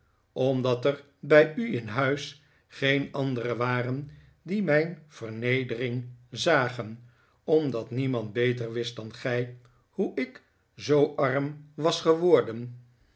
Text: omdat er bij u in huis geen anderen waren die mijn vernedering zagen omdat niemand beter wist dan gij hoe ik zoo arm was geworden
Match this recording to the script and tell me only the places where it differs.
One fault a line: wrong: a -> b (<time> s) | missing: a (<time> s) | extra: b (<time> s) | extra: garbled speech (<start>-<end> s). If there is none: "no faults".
no faults